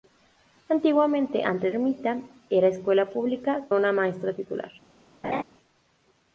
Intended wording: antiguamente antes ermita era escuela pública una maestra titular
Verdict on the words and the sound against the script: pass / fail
fail